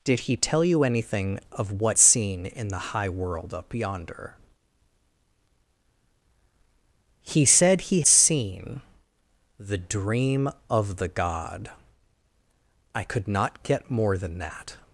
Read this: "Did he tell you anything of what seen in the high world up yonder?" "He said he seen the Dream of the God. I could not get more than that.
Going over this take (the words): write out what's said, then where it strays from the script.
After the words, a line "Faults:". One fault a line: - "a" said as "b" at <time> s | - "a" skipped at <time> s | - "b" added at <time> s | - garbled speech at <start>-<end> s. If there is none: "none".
"Did he tell you anything of what seen in the high world up yonder?" "He said he seen the Dream of the God. I could not get more than that.
Faults:
none